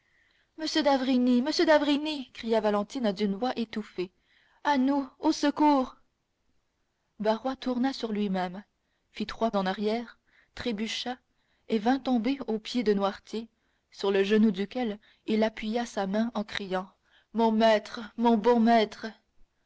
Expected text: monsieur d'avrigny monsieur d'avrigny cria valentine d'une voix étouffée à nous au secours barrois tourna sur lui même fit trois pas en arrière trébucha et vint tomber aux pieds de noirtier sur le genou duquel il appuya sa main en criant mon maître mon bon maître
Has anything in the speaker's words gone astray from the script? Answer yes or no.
yes